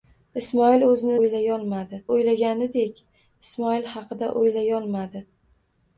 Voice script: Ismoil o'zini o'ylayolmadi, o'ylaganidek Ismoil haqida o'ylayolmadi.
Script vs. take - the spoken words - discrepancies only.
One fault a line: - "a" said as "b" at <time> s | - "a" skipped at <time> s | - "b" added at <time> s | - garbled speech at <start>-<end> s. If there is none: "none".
none